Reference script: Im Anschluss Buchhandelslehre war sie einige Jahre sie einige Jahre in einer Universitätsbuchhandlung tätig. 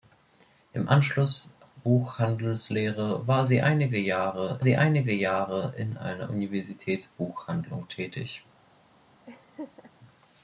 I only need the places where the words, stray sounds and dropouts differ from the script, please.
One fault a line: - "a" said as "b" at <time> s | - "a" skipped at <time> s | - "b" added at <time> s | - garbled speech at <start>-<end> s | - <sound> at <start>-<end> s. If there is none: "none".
- laugh at 9.3-9.9 s